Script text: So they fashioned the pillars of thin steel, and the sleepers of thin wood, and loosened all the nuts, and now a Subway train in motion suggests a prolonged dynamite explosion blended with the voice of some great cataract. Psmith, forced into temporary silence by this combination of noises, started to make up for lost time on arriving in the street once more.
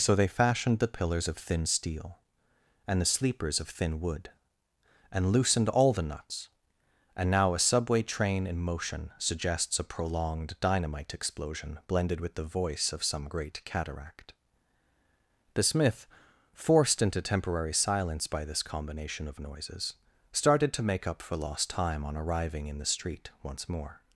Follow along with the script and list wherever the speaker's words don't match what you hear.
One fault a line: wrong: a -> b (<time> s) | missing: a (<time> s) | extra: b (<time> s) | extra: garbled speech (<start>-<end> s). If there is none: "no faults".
wrong: Psmith -> The smith (15.5 s)